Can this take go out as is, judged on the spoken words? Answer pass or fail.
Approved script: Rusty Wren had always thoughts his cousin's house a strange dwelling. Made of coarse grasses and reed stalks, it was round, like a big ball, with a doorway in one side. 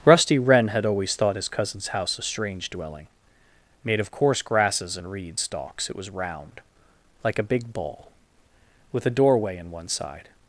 fail